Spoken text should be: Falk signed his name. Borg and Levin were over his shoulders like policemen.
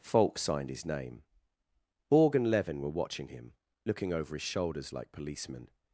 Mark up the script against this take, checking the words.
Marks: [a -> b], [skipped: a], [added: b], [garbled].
Falk signed his name. Borg and Levin were [added: watching him looking] over his shoulders like policemen.